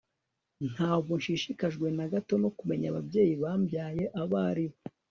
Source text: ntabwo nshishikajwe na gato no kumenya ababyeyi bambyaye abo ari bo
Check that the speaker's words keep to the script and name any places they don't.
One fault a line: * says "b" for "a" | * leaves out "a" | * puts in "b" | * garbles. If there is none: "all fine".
all fine